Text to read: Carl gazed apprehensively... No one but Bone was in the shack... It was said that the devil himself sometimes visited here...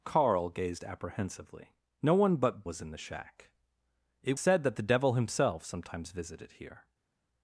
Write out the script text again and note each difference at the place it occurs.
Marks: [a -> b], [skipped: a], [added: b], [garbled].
Carl gazed apprehensively... No one but [skipped: Bone] was in the shack... It [skipped: was] said that the devil himself sometimes visited here...